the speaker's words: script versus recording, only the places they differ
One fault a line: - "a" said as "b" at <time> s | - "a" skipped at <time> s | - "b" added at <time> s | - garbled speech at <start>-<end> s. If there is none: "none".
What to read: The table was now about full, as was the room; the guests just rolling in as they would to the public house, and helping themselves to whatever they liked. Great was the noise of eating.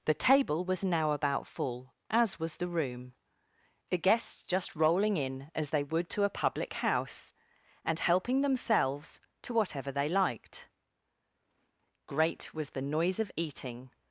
- "the" said as "a" at 6.2 s